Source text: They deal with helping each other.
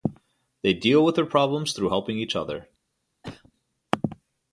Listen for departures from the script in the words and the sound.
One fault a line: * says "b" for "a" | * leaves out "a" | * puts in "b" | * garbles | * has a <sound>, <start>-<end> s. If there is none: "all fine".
* puts in "their problems through"
* has a cough, 3.2-3.5 s